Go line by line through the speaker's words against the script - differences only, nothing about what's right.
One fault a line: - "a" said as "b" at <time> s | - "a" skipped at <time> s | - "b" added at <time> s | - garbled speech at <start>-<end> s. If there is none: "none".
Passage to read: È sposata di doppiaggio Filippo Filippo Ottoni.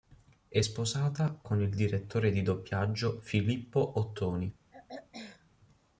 - "con il direttore" added at 1.4 s
- "Filippo" skipped at 4.0 s